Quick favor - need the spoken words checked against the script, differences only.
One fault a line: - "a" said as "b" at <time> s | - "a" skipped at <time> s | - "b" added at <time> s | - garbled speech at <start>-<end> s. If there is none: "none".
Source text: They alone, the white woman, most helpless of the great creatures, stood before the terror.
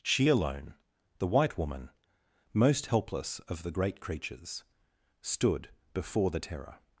- "They" said as "She" at 0.0 s